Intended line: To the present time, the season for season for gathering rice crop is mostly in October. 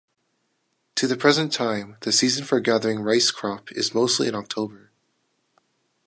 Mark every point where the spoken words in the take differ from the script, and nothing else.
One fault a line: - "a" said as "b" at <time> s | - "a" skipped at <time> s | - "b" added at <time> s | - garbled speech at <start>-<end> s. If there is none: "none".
- "season for" skipped at 2.6 s